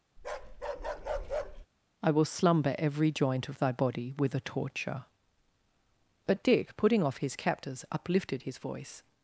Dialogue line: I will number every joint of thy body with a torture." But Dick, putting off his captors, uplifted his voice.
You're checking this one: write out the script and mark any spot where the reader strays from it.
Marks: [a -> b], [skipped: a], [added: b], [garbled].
I will [number -> slumber] every joint of thy body with a torture." But Dick, putting off his captors, uplifted his voice.